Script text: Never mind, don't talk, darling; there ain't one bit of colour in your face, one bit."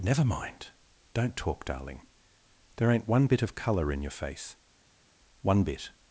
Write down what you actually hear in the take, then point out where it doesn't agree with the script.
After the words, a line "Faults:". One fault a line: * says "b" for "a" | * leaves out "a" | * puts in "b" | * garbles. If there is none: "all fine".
Never mind, don't talk, darling; there ain't one bit of colour in your face, one bit."
Faults:
all fine